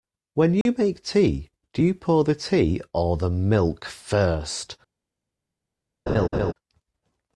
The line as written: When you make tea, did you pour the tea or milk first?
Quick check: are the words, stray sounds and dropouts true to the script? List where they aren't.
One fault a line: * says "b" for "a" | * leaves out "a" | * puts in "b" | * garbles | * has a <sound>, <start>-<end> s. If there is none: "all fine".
* has a dropout, 0.6-0.7 s
* says "do" for "did"
* puts in "the"
* has a laugh, 6.1-6.5 s